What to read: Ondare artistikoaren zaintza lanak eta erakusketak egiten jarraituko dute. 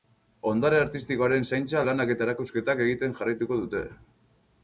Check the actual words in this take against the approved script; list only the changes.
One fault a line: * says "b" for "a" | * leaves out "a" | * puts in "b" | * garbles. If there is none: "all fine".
all fine